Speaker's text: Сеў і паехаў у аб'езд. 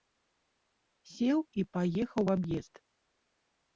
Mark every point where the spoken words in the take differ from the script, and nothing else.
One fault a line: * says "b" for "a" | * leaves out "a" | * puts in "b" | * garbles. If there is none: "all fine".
all fine